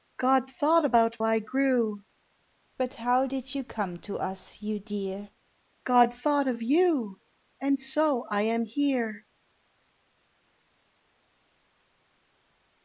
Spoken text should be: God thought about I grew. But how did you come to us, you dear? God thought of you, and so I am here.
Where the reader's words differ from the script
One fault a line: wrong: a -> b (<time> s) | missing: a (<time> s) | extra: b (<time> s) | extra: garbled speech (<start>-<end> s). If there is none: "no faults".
no faults